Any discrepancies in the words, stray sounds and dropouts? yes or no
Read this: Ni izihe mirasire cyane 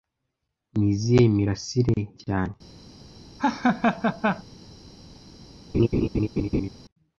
yes